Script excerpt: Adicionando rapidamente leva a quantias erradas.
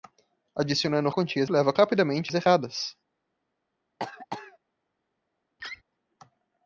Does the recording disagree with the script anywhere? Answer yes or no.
yes